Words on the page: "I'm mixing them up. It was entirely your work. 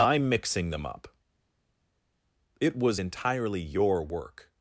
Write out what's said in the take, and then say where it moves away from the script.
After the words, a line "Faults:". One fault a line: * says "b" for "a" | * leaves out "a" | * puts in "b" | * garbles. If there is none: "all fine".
"I'm mixing them up. It was entirely your work.
Faults:
all fine